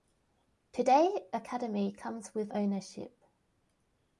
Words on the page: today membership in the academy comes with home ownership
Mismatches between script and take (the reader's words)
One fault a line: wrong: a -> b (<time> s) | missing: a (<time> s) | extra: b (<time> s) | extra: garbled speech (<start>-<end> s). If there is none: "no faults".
missing: membership in the (1.3 s)
missing: home (2.5 s)